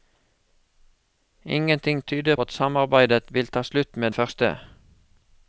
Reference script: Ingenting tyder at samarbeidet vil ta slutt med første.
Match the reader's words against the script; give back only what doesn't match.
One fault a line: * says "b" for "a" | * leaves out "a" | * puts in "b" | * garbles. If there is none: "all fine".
all fine